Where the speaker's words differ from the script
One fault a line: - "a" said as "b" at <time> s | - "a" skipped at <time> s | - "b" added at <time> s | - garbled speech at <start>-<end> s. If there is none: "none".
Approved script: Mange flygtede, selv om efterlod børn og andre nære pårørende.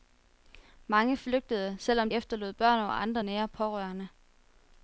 none